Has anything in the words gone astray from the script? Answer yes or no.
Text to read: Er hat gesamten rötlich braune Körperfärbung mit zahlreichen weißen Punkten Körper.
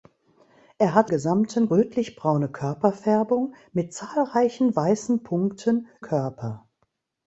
no